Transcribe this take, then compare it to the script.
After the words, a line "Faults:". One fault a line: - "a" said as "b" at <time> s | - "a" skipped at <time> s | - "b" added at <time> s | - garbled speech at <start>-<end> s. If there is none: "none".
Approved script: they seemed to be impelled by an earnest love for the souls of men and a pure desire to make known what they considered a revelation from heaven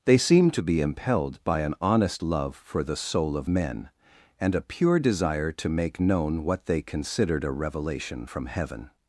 they seemed to be impelled by an honest love for the soul of men and a pure desire to make known what they considered a revelation from heaven
Faults:
- "earnest" said as "honest" at 1.8 s
- "souls" said as "soul" at 3.0 s